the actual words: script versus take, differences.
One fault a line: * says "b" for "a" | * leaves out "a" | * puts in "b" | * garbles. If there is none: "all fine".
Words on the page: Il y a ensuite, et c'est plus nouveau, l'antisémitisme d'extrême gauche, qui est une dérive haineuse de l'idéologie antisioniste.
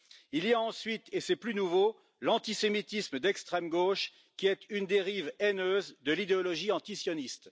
all fine